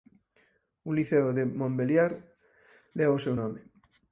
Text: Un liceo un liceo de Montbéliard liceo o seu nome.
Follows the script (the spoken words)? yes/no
no